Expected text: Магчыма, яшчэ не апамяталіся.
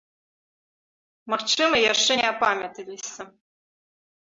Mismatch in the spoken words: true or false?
false